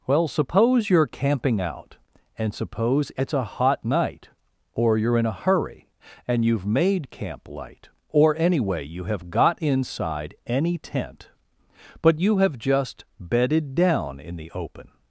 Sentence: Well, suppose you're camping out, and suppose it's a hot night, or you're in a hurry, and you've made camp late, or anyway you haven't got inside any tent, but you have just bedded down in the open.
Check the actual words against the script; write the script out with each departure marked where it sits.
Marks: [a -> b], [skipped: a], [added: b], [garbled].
Well, suppose you're camping out, and suppose it's a hot night, or you're in a hurry, and you've made camp [late, -> light] or anyway you [haven't -> have] got inside any tent, but you have just bedded down in the open.